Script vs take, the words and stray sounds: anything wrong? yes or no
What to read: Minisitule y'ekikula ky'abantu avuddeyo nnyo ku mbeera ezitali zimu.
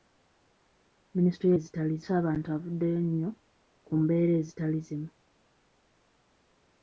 yes